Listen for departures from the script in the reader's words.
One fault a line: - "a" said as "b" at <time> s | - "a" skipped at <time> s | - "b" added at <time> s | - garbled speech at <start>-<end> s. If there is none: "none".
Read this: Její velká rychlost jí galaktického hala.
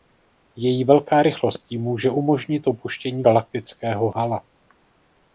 - "může umožnit opuštění" added at 1.8 s